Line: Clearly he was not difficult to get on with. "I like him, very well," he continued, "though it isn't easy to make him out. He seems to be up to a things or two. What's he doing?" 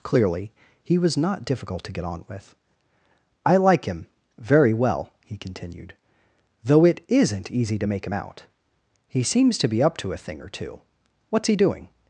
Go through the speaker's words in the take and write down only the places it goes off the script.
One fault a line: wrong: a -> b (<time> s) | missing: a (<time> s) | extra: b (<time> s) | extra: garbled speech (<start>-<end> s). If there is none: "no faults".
wrong: things -> thing (10.2 s)